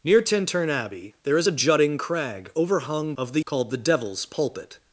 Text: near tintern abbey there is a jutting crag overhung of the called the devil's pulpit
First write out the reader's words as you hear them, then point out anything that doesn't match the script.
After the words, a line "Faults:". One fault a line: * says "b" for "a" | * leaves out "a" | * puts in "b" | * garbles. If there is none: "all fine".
near tintern abbey there is a jutting crag overhung of the called the devil's pulpit
Faults:
all fine